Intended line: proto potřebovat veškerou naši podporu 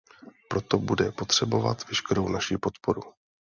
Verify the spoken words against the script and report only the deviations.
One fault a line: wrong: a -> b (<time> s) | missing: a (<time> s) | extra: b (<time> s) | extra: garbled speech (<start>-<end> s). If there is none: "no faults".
extra: bude (0.8 s)